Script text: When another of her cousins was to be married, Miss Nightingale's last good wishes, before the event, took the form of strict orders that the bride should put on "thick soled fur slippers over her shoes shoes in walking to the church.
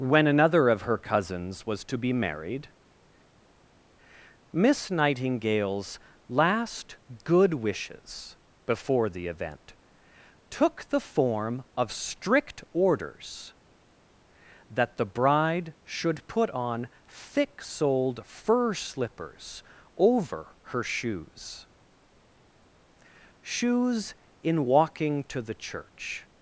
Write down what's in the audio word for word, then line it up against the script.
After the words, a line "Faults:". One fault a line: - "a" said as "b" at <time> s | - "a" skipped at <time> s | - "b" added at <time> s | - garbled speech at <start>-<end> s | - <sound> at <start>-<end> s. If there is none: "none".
When another of her cousins was to be married, Miss Nightingale's last good wishes, before the event, took the form of strict orders that the bride should put on "thick soled fur slippers over her shoes shoes in walking to the church.
Faults:
none